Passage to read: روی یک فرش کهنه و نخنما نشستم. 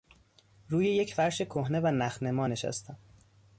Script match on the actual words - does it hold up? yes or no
yes